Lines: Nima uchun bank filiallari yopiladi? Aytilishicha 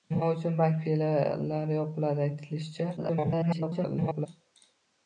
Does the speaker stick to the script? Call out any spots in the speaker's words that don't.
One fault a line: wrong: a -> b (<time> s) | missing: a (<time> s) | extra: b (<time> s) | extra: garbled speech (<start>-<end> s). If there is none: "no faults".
extra: garbled speech (3.0-4.3 s)